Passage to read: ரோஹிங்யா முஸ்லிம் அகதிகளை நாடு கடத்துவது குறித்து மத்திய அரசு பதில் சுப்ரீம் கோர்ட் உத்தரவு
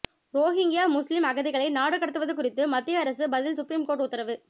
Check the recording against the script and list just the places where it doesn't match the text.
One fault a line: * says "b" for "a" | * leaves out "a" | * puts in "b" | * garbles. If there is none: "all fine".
all fine